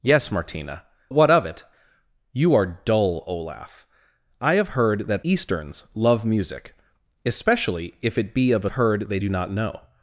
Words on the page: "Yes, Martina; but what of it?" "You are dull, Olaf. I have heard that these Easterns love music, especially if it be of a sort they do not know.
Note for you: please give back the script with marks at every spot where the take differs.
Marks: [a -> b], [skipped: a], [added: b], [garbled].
"Yes, Martina; [skipped: but] what of it?" "You are dull, Olaf. I have heard that [skipped: these] Easterns love music, especially if it be of a [sort -> heard] they do not know.